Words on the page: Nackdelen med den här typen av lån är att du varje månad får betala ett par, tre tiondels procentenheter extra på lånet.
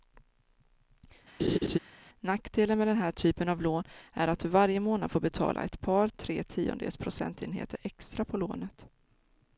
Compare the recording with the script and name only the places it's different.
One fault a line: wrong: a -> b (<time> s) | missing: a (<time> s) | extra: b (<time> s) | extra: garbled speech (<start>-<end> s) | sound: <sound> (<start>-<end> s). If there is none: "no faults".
sound: laugh (1.4-1.8 s)